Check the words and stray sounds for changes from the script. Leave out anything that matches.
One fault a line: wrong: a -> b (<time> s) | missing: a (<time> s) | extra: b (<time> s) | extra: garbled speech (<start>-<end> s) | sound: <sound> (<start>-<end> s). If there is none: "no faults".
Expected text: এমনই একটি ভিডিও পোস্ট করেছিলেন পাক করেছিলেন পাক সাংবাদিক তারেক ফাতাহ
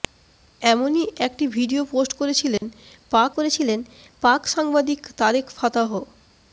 sound: dropout (2.6-2.6 s)